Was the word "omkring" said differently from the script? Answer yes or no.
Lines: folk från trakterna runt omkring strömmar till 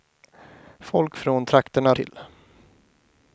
yes